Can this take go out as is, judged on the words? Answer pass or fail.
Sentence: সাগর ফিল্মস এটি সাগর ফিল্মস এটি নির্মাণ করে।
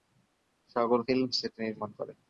fail